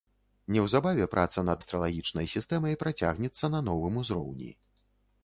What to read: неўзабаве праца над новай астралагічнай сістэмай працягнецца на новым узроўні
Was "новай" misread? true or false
true